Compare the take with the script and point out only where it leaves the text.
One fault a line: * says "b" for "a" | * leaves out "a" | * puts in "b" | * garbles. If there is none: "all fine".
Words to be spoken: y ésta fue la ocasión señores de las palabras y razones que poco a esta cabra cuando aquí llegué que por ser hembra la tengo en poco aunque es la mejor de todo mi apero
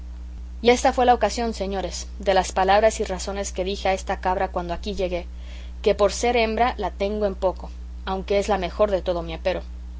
* says "dije" for "poco"